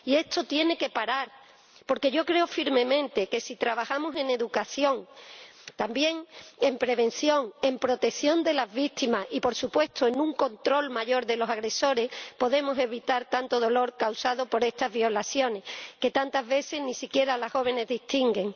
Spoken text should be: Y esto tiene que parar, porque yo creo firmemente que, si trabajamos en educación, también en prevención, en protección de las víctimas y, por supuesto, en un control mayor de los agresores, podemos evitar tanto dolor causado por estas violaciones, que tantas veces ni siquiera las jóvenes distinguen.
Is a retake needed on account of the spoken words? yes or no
no